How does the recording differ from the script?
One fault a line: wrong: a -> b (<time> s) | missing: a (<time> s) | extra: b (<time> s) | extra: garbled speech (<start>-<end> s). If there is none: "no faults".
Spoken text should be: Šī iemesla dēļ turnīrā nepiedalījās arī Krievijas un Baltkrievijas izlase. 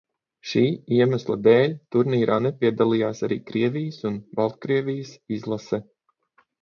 no faults